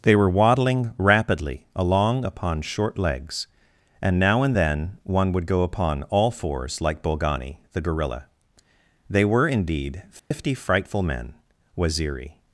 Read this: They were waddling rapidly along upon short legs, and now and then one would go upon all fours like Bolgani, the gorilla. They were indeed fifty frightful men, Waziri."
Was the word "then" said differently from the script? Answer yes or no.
no